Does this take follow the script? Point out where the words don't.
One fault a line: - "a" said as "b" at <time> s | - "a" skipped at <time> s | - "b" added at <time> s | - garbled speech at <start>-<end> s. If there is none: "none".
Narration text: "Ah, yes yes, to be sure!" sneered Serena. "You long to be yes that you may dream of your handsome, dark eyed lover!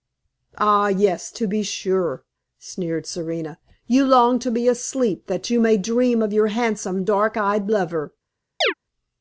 - "yes" skipped at 1.3 s
- "yes" said as "asleep" at 4.7 s